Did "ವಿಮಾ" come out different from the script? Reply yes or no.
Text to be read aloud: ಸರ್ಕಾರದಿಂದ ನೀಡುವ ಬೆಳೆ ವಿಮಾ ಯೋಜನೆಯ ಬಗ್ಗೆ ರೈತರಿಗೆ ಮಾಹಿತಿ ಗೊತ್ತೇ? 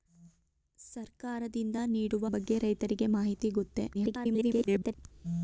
yes